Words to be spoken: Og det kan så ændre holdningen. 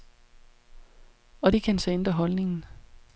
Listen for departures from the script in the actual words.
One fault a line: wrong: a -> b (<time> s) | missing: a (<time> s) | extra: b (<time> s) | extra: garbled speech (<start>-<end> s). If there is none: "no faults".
no faults